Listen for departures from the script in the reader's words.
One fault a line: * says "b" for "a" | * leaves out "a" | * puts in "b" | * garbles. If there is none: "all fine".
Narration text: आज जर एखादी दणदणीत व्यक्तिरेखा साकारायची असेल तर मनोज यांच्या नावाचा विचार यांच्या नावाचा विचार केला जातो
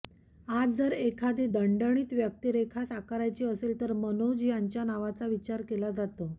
* leaves out "यांच्या नावाचा विचार"